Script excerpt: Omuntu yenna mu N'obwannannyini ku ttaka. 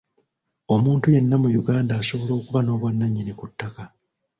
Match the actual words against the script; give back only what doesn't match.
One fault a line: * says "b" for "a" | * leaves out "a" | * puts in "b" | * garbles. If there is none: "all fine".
* puts in "Uganda asobola okuba"